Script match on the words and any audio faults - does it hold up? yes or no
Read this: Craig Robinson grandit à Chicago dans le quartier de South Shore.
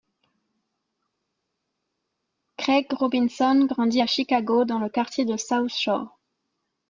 yes